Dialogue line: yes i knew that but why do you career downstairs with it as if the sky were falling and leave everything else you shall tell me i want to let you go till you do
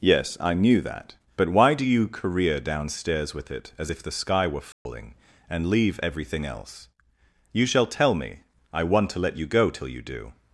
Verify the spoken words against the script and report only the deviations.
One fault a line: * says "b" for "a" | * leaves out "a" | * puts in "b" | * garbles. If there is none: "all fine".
all fine